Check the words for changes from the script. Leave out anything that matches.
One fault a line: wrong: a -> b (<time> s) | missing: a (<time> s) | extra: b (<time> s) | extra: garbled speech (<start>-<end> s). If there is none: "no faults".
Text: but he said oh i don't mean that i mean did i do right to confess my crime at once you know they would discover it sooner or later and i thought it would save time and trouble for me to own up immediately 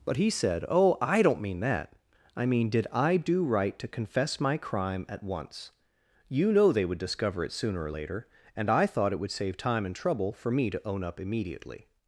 no faults